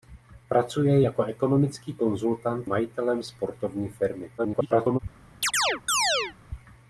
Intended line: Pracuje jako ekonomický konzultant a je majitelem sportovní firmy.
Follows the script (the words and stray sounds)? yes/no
no